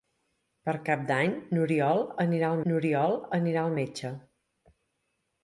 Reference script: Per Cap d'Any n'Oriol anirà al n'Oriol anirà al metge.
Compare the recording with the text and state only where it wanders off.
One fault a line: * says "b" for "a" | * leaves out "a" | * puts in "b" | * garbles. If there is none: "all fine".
all fine